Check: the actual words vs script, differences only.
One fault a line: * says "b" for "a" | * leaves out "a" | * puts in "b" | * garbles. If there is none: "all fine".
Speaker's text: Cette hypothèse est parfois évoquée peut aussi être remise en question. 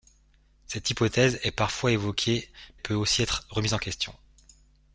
all fine